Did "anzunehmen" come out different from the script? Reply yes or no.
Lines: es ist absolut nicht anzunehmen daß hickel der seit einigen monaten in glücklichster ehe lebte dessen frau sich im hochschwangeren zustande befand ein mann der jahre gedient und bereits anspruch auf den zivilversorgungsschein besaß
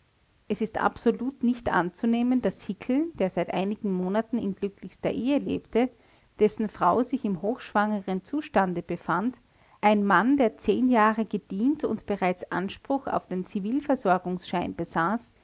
no